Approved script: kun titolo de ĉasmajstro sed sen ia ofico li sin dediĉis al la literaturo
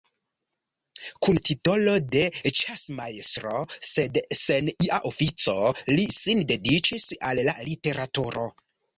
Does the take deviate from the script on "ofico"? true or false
false